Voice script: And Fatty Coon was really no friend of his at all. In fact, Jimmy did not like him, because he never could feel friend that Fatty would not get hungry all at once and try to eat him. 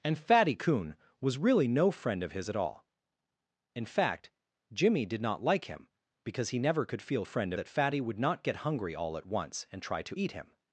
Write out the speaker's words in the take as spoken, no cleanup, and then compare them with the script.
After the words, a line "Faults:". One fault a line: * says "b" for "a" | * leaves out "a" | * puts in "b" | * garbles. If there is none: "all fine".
And Fatty Coon was really no friend of his at all. In fact, Jimmy did not like him, because he never could feel friend that Fatty would not get hungry all at once and try to eat him.
Faults:
all fine